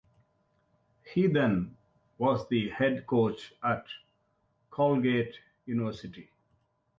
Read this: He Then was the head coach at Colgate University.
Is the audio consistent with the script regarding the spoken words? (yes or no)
yes